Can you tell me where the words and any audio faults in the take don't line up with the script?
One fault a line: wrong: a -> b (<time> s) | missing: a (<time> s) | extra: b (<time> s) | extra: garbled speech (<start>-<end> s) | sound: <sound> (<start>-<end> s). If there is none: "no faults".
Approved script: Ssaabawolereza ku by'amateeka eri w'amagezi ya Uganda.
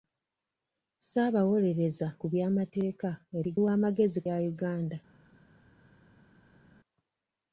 no faults